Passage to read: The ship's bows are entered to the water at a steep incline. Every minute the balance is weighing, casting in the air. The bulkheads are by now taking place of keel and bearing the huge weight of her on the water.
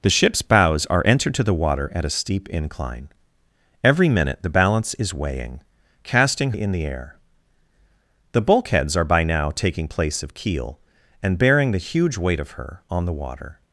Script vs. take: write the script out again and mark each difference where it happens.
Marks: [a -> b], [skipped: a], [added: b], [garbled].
The ship's bows are entered to the water at a steep incline. Every minute the balance is weighing, casting in the air. The bulkheads are by now taking place of keel and bearing the huge weight of her on the water.